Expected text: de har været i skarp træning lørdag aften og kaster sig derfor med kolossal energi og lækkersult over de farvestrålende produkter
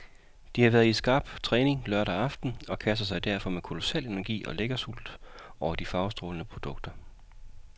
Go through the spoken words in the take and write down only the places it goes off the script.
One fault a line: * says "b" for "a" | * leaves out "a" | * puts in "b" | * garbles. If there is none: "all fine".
all fine